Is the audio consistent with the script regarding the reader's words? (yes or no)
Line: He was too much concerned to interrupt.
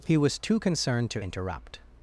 no